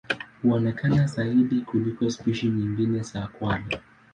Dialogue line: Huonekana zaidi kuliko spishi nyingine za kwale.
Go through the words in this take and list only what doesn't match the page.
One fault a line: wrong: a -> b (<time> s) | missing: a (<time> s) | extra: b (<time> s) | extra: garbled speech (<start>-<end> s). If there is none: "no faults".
no faults